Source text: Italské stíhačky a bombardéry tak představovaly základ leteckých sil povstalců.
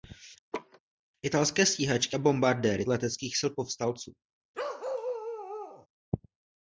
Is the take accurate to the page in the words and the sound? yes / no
no